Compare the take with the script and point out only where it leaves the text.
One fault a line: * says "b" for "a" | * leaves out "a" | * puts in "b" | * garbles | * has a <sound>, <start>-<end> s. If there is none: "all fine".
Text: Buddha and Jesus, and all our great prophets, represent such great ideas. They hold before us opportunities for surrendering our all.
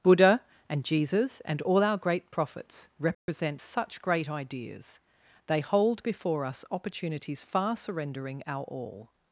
* has a dropout, 3.1-3.3 s
* says "far" for "for"